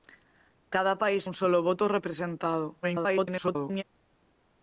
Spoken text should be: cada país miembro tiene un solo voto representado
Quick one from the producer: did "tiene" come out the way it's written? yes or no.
no